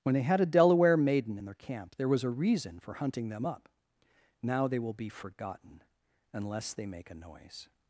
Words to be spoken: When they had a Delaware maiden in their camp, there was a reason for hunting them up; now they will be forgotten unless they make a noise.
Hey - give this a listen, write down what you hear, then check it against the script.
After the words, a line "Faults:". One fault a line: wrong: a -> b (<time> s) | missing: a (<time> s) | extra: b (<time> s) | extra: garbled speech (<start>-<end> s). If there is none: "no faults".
When they had a Delaware maiden in their camp, there was a reason for hunting them up; now they will be forgotten unless they make a noise.
Faults:
no faults